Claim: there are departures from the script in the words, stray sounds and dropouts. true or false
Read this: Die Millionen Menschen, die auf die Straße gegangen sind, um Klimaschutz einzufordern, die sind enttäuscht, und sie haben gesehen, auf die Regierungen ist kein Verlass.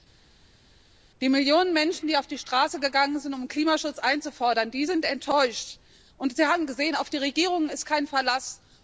false